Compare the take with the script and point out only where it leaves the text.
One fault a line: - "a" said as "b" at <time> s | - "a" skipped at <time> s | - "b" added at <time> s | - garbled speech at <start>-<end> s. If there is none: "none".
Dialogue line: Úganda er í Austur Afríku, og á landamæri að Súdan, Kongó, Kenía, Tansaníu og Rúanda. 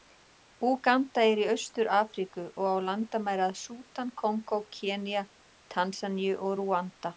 none